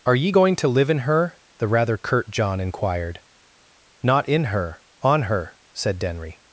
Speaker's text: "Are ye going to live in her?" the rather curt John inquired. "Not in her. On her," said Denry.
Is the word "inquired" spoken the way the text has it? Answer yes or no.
yes